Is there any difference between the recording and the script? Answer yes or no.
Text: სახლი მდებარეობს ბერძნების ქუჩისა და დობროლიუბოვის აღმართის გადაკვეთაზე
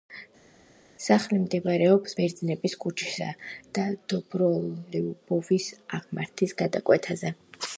no